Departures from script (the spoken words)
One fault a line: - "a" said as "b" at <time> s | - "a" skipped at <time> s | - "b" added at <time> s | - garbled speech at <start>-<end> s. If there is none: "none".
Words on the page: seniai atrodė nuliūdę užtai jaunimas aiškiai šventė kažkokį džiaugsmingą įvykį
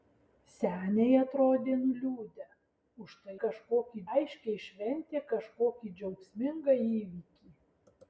- "jaunimas" said as "kažkokį" at 3.4 s